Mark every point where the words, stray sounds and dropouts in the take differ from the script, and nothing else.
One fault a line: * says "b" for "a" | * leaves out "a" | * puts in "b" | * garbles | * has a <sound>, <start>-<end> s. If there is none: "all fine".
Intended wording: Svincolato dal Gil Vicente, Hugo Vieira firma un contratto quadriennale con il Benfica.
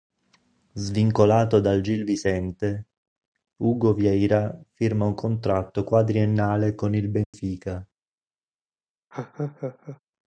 * has a dropout, 7.2-7.3 s
* has a laugh, 9.1-10.0 s